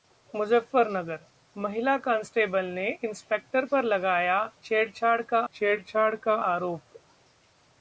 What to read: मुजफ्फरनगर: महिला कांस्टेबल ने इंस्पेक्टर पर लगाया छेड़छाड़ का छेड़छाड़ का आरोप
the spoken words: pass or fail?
pass